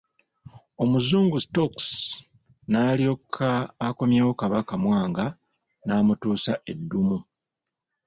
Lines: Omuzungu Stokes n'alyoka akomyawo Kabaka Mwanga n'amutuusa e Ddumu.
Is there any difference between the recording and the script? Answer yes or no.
no